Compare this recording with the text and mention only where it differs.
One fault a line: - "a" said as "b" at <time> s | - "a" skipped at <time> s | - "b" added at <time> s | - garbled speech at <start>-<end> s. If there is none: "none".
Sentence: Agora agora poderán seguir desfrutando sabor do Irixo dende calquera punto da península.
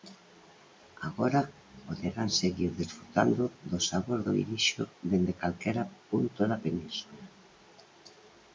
- "agora" skipped at 1.4 s
- "do" added at 3.7 s